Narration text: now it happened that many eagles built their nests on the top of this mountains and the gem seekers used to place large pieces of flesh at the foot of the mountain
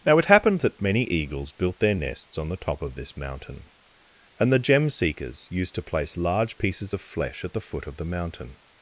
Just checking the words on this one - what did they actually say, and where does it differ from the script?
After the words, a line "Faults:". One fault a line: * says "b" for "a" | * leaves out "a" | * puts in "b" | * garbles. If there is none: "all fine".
now it happened that many eagles built their nests on the top of this mountain and the gem seekers used to place large pieces of flesh at the foot of the mountain
Faults:
* says "mountain" for "mountains"